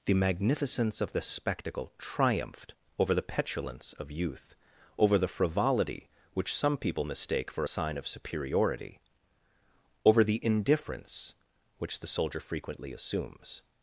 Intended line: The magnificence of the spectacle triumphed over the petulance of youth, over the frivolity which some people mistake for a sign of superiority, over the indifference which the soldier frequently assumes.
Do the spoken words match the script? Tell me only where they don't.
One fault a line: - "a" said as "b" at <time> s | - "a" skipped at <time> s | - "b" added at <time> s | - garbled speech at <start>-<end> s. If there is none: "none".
none